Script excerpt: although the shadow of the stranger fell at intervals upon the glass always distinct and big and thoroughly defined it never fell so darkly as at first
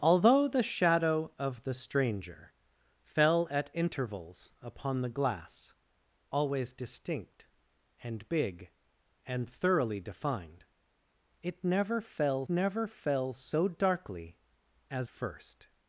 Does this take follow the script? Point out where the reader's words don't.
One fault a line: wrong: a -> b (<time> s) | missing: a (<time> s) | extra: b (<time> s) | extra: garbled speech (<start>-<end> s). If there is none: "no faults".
extra: never fell (12.5 s)
missing: at (15.1 s)